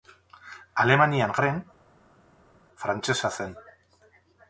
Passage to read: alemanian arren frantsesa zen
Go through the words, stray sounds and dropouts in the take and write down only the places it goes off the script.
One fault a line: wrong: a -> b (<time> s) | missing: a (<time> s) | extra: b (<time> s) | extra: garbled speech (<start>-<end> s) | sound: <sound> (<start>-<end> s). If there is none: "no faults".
no faults